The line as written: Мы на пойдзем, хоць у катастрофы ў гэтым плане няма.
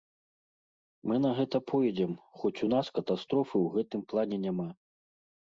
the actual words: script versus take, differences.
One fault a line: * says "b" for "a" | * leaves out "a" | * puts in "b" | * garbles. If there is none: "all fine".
* puts in "гэта"
* puts in "нас"